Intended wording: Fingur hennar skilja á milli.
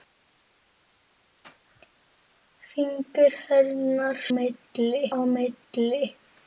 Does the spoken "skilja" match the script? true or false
false